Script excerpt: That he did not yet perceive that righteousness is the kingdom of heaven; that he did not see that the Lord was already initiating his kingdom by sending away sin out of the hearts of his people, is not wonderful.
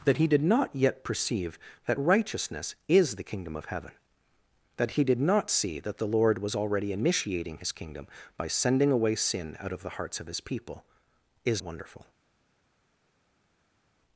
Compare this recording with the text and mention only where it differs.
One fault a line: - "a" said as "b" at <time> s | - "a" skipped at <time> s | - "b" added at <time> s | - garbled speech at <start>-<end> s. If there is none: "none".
- "not" skipped at 11.6 s